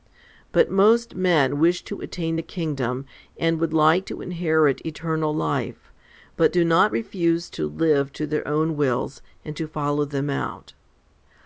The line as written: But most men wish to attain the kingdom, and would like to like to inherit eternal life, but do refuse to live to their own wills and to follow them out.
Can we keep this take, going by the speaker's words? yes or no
no